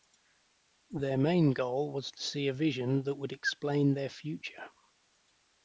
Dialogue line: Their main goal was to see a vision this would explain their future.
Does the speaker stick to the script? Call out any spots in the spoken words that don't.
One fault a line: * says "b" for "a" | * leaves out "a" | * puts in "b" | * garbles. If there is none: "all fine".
* says "that" for "this"